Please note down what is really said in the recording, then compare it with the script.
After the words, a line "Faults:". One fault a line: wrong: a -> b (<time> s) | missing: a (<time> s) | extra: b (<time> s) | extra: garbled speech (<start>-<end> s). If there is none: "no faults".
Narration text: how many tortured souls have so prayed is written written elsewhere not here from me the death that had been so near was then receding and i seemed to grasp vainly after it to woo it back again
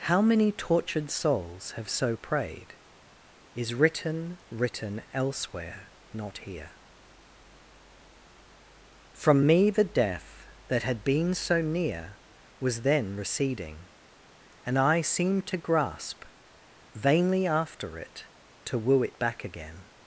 how many tortured souls have so prayed is written written elsewhere not here from me the death that had been so near was then receding and i seemed to grasp vainly after it to woo it back again
Faults:
no faults